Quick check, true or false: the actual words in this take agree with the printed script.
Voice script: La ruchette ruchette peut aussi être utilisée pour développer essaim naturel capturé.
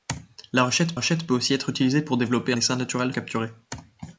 true